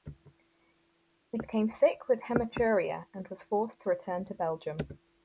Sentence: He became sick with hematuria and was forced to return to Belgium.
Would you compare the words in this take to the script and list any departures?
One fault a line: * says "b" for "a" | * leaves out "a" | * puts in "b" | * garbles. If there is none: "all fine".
all fine